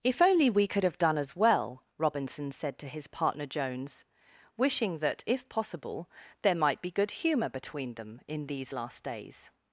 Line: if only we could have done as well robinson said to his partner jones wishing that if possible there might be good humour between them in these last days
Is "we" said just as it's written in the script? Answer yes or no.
yes